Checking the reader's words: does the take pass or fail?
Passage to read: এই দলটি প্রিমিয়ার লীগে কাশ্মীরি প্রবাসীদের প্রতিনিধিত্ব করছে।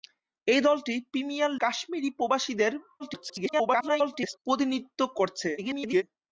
fail